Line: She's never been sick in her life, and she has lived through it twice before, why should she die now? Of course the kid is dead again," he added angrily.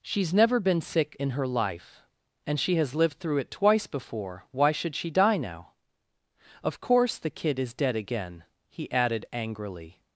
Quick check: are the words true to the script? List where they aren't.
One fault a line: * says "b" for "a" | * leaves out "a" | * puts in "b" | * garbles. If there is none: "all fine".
all fine